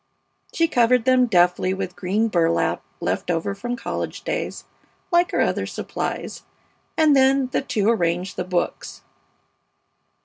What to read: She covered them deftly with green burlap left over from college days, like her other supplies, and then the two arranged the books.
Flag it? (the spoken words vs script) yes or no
no